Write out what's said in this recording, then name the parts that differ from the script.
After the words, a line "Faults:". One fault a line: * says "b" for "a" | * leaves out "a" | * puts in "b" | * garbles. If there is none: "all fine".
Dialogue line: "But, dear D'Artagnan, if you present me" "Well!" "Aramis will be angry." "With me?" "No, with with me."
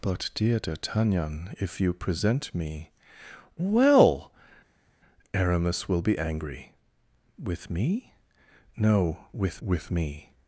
"But, dear D'Artagnan, if you present me" "Well!" "Aramis will be angry." "With me?" "No, with with me."
Faults:
all fine